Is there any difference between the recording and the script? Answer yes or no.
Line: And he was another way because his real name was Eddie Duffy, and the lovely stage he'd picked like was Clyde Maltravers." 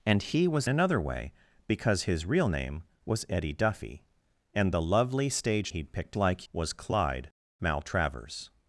no